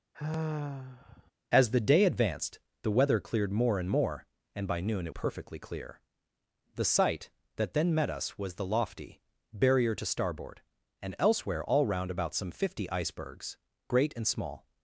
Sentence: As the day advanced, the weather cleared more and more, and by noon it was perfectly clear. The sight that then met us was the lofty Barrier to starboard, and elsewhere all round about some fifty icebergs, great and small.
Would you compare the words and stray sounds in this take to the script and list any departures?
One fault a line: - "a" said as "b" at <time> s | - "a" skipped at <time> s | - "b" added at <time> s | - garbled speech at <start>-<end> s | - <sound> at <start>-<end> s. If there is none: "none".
- sigh at 0.1-1.3 s
- "was" skipped at 5.1 s